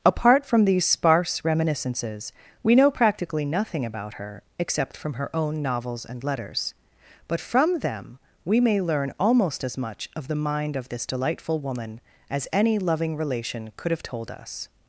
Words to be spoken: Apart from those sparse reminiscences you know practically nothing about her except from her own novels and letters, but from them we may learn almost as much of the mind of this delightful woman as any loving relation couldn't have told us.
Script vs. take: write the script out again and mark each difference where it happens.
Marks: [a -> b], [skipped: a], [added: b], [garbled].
Apart from [those -> these] sparse reminiscences [you -> we] know practically nothing about her except from her own novels and letters, but from them we may learn almost as much of the mind of this delightful woman as any loving relation [couldn't -> could] have told us.